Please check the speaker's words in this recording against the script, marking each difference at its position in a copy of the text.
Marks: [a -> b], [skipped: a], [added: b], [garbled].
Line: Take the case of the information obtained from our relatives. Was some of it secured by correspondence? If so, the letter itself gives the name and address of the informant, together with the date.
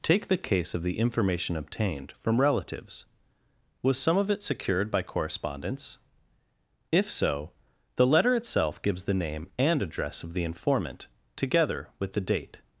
Take the case of the information obtained from [skipped: our] relatives. Was some of it secured by correspondence? If so, the letter itself gives the name and address of the informant, together with the date.